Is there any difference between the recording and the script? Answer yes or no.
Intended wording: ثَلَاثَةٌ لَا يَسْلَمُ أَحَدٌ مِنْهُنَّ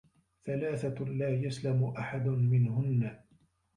no